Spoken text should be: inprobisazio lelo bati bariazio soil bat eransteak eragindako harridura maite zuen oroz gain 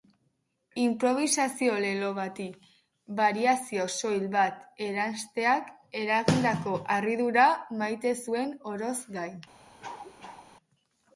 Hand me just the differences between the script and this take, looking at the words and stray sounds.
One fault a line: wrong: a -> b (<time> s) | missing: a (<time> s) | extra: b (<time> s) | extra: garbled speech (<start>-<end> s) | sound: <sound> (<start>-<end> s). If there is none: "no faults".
sound: cough (9.8-10.5 s)